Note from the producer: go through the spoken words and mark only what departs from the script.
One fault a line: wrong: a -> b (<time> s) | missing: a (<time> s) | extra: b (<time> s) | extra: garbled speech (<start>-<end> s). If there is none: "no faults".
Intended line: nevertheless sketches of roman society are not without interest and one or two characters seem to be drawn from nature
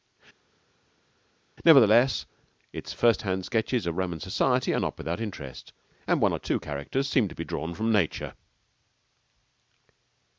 extra: its first hand (2.7 s)